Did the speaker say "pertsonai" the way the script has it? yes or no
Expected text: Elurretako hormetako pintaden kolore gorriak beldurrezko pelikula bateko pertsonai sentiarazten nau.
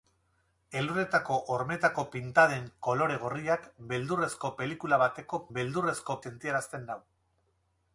no